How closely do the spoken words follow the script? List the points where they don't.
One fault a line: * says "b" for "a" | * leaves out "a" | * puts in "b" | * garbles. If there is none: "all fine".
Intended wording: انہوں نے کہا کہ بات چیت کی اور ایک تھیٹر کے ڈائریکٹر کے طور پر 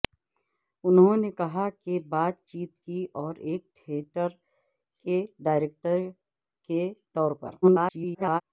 * garbles